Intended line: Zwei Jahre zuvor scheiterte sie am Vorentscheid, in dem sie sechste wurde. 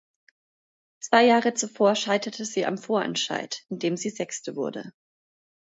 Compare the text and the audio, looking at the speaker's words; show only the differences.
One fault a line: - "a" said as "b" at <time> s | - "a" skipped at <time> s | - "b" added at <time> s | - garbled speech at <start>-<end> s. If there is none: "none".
none